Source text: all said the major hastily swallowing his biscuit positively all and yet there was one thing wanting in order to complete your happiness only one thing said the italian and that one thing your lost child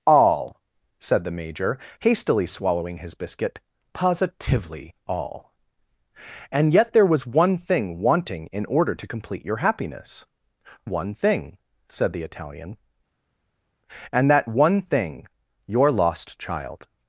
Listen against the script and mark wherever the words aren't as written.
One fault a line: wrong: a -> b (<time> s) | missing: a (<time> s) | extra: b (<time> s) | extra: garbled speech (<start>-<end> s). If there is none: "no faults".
missing: only (10.2 s)